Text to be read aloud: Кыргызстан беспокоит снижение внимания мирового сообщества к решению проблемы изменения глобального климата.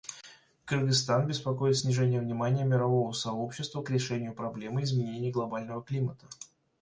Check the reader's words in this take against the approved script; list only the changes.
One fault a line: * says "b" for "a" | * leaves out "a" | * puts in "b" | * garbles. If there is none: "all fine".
all fine